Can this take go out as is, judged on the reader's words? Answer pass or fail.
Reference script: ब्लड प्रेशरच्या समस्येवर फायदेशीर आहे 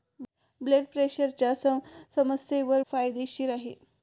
pass